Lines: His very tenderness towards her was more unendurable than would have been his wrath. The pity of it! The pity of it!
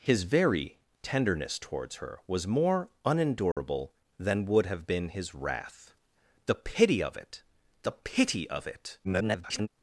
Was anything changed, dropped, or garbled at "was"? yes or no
no